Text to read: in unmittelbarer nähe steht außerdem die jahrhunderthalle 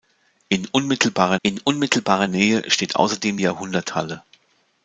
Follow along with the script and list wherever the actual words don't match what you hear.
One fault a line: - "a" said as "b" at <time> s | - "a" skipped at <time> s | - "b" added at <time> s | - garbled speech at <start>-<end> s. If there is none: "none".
- "in unmittelbarer" added at 1.4 s
- "die" skipped at 3.4 s